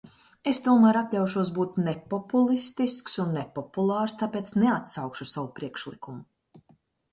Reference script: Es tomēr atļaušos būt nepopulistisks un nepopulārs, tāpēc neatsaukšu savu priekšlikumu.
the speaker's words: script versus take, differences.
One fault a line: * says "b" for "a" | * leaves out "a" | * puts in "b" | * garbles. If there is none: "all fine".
all fine